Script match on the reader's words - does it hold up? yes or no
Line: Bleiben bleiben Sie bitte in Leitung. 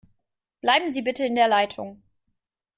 no